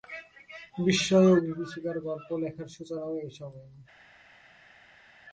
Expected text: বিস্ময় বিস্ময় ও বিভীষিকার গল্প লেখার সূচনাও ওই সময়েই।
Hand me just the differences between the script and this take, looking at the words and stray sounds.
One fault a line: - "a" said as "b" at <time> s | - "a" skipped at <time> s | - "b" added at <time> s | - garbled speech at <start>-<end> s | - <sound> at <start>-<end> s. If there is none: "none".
- "বিস্ময়" skipped at 1.3 s
- "ওই" said as "এই" at 3.2 s